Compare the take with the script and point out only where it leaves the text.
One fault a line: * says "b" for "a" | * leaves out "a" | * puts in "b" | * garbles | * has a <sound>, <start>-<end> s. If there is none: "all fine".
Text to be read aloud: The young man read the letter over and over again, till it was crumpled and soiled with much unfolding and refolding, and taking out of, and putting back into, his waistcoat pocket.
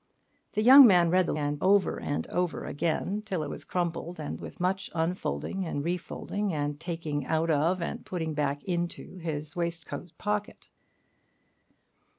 * says "and" for "letter"
* leaves out "soiled"